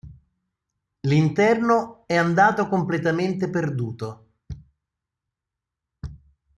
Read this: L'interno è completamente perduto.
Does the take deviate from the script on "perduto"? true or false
false